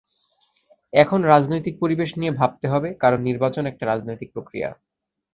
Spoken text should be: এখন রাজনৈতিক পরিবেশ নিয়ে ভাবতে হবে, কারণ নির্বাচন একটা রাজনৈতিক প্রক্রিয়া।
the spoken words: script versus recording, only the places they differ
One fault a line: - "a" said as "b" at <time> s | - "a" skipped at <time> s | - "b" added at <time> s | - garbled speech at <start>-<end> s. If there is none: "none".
none